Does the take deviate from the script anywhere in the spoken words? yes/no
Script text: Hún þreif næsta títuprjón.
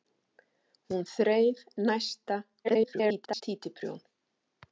yes